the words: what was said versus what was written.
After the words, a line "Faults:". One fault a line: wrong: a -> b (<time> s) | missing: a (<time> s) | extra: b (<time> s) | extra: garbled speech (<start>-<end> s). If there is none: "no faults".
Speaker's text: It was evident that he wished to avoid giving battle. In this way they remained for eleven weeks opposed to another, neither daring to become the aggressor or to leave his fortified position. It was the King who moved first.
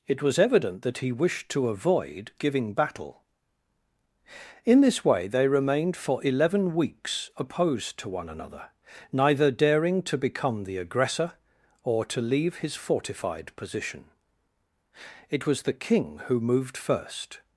It was evident that he wished to avoid giving battle. In this way they remained for eleven weeks opposed to one another, neither daring to become the aggressor or to leave his fortified position. It was the King who moved first.
Faults:
extra: one (8.1 s)